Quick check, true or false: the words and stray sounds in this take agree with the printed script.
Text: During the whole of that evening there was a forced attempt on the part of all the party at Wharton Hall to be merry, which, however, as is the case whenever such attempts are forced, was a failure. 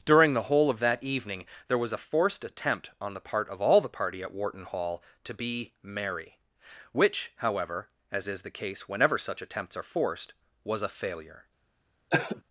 false